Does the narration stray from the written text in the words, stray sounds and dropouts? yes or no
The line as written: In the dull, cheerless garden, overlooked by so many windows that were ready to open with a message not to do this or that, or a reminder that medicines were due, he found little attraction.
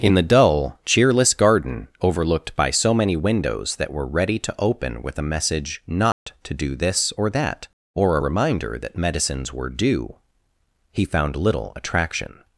yes